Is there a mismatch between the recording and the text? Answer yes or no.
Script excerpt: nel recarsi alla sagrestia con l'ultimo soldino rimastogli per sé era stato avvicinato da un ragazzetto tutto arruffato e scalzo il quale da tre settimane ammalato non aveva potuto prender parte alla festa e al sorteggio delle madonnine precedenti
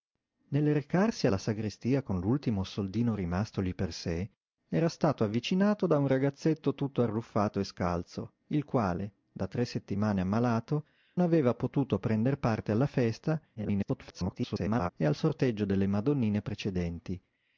yes